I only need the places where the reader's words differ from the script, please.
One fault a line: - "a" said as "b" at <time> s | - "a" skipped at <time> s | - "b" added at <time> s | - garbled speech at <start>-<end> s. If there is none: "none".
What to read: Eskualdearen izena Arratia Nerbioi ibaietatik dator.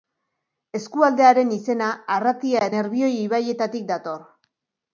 none